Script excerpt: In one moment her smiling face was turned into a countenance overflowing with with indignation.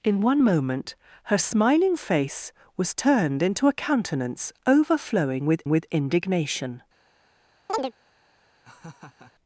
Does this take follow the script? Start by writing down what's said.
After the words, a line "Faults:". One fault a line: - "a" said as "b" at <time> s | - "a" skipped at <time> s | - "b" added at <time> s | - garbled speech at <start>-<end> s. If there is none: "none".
In one moment her smiling face was turned into a countenance overflowing with with indignation.
Faults:
none